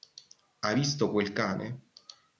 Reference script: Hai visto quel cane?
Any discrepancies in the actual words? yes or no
no